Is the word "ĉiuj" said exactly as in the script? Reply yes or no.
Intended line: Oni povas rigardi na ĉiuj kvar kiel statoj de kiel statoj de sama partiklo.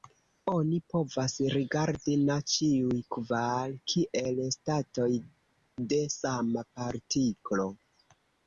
yes